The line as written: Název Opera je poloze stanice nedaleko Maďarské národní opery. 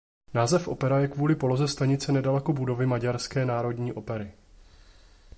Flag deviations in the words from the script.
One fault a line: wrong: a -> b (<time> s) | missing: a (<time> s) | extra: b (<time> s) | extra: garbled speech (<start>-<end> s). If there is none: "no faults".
extra: kvůli (1.1 s)
extra: budovy (2.5 s)